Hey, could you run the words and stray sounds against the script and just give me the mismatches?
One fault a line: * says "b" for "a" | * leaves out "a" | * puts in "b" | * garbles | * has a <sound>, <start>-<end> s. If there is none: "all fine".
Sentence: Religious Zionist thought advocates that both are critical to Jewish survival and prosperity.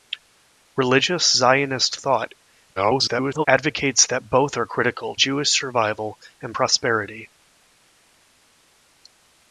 * garbles
* leaves out "to"